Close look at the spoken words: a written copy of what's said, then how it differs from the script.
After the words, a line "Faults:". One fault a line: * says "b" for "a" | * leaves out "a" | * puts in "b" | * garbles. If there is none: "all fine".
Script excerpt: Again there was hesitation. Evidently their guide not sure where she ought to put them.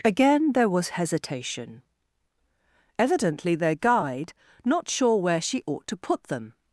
Again there was hesitation. Evidently their guide not sure where she ought to put them.
Faults:
all fine